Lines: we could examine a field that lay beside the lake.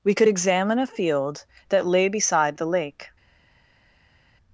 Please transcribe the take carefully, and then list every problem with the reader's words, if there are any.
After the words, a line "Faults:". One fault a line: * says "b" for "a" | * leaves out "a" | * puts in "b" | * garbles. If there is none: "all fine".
we could examine a field that lay beside the lake.
Faults:
all fine